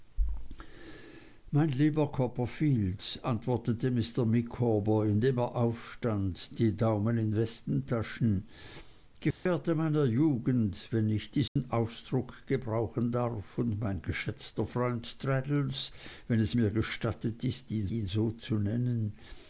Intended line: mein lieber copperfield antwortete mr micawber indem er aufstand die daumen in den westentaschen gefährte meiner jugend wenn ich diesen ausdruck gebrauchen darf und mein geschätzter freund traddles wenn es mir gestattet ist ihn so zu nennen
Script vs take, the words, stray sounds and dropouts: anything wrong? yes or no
yes